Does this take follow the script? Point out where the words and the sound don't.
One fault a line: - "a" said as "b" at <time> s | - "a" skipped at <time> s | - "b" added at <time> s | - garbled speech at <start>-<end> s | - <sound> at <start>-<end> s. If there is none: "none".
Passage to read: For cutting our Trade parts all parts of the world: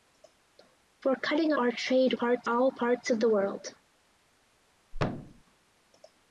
- thud at 4.9-5.4 s